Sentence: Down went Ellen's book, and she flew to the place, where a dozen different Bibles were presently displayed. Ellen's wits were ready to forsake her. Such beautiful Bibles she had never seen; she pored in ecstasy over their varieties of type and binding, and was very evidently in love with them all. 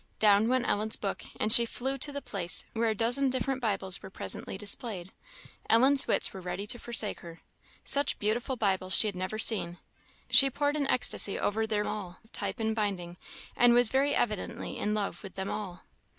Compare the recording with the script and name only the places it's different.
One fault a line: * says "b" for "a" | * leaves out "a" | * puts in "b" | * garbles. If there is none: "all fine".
* says "all" for "varieties"